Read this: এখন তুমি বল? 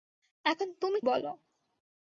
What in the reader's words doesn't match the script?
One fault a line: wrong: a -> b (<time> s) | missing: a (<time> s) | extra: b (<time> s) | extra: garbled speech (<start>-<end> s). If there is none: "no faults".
no faults